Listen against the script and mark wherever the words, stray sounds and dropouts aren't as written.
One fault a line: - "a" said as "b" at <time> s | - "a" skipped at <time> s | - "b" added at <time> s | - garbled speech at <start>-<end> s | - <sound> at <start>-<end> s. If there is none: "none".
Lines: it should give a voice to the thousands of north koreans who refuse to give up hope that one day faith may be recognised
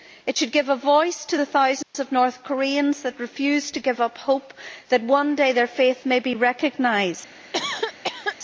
- dropout at 1.8-1.9 s
- "their" added at 5.5 s
- cough at 7.5-8.4 s